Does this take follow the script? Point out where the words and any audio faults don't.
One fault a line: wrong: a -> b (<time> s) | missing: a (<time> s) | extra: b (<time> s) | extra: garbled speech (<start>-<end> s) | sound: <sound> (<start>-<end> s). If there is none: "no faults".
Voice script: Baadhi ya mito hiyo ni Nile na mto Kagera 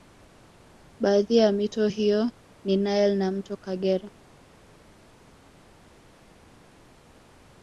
no faults